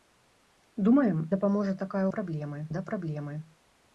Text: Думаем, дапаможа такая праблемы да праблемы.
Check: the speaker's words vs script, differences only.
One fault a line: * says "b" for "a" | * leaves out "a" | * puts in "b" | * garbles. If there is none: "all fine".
all fine